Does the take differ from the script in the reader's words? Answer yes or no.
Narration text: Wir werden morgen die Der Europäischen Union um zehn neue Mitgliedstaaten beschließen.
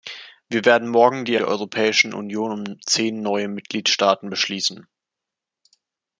no